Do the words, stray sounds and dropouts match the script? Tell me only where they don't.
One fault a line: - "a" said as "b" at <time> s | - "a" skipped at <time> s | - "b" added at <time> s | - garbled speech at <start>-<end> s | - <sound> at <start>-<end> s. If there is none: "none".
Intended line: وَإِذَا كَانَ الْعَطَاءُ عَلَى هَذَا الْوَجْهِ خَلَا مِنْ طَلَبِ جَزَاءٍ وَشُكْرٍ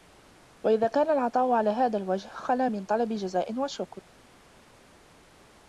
none